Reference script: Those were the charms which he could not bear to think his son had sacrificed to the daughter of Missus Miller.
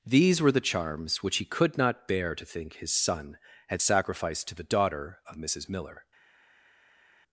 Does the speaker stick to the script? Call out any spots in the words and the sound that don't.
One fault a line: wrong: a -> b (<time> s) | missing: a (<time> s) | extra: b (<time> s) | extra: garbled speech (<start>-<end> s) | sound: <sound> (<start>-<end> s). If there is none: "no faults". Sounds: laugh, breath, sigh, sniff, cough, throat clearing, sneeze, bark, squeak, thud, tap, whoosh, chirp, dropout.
wrong: Those -> These (0.1 s)